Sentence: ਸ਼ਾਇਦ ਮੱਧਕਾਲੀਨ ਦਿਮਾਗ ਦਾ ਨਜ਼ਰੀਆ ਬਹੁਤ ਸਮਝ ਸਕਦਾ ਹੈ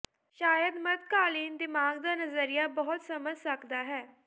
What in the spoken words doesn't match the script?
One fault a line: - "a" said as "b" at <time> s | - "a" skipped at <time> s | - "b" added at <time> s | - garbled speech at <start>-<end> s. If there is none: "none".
none